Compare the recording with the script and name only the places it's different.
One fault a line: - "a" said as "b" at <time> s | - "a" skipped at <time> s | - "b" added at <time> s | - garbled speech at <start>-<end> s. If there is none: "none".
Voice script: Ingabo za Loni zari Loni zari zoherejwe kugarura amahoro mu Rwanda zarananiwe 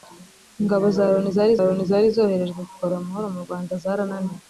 none